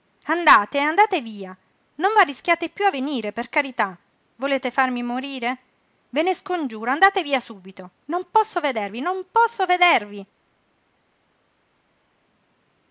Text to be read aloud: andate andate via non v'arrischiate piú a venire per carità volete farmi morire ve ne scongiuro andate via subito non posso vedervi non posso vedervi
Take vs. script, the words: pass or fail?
pass